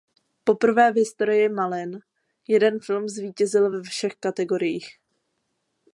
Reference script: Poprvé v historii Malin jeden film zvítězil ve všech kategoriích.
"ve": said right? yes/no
yes